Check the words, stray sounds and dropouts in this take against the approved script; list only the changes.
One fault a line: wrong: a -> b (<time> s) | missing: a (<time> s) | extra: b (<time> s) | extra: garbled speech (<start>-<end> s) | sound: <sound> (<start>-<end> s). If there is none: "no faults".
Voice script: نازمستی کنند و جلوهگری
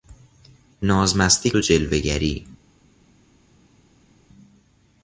missing: کنند (1.5 s)